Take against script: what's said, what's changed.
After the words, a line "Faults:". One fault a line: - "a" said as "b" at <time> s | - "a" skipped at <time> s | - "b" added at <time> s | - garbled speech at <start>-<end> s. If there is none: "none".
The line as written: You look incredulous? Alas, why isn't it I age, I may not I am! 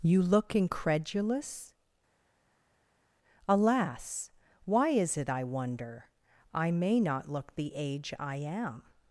You look incredulous? Alas, why is it I wonder, I may not look the age I am!
Faults:
- "isn't" said as "is" at 4.9 s
- "age" said as "wonder" at 5.4 s
- "look the age" added at 7.3 s